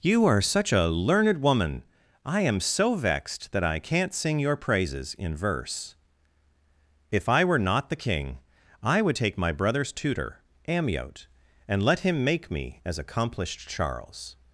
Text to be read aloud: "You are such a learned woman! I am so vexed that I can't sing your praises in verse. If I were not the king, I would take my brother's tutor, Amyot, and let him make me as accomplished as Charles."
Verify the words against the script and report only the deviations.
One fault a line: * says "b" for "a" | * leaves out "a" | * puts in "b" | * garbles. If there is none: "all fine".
* leaves out "as"